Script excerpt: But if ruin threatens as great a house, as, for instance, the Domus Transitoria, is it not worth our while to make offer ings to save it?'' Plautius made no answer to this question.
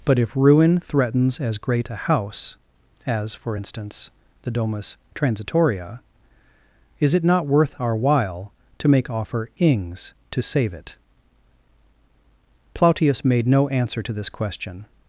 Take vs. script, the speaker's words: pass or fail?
pass